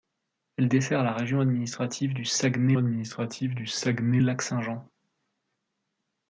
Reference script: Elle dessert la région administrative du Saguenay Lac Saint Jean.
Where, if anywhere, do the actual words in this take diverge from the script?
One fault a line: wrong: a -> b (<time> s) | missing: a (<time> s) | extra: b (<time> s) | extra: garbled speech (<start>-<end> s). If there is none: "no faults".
extra: administrative du Saguenay (2.8 s)